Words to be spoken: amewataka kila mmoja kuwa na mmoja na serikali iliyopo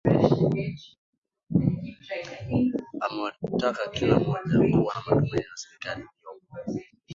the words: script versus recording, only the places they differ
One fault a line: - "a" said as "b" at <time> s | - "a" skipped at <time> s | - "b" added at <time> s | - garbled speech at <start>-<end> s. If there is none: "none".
- "mmoja" said as "matumaini" at 5.0 s